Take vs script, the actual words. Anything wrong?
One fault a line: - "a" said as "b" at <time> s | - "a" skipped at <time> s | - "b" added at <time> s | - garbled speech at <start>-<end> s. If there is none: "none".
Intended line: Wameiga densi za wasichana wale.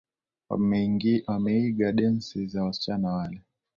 none